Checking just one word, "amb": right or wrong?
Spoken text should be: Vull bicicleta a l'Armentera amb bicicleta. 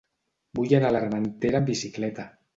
right